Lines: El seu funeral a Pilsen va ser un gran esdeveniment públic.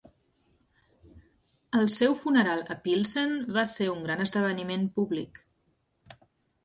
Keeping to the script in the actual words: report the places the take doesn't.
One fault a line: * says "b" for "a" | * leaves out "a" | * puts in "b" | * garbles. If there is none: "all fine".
all fine